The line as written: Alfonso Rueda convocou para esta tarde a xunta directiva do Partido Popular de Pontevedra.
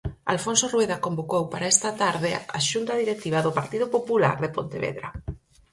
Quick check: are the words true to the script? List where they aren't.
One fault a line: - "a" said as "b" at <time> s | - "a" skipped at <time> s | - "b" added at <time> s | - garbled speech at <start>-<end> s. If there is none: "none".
none